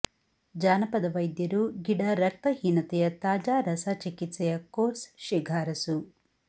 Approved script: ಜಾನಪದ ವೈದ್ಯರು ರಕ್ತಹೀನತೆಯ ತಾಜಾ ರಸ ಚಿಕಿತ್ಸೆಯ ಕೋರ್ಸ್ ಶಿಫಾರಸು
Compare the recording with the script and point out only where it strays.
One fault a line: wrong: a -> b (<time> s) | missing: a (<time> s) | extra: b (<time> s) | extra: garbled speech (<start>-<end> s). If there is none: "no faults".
extra: ಗಿಡ (1.8 s)